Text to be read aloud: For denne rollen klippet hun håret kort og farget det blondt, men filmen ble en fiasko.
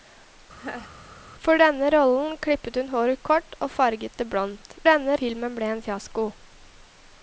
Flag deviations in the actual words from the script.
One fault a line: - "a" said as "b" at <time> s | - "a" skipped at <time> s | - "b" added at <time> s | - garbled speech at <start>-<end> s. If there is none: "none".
- "men" said as "denne" at 4.9 s